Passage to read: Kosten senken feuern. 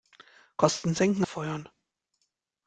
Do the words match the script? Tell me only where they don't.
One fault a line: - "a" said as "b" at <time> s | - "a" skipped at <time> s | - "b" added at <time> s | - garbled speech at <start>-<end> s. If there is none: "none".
none